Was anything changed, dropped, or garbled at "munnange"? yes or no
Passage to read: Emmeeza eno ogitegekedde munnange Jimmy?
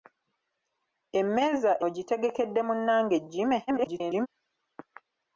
no